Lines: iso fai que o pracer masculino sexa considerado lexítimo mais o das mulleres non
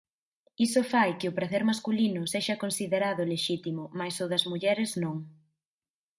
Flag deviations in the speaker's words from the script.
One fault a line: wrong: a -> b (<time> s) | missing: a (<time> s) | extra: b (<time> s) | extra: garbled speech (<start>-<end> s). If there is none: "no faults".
no faults